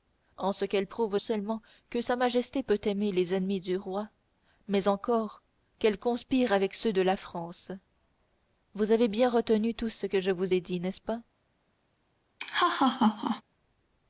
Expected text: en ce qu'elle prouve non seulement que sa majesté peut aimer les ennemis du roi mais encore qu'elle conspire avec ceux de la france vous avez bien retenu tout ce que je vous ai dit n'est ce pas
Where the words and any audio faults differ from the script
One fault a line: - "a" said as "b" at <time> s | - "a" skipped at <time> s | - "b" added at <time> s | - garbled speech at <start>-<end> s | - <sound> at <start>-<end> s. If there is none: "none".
- "non" skipped at 1.2 s
- laugh at 12.4-13.4 s